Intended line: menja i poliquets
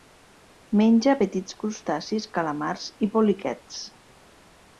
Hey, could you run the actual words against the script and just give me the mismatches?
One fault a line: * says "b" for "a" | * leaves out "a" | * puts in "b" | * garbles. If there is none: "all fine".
* puts in "petits crustacis calamars"